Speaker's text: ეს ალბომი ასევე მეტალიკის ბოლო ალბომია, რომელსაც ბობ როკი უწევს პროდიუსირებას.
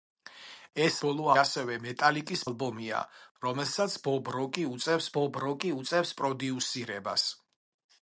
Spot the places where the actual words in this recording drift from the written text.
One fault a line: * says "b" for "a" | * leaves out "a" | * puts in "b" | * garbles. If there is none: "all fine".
* says "ბოლო" for "ალბომი"
* leaves out "ბოლო"
* puts in "ბობ როკი უწევს"